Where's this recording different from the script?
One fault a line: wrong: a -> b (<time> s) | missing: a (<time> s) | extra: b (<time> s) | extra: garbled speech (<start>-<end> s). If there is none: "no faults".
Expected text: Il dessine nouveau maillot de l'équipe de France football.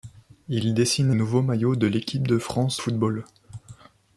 no faults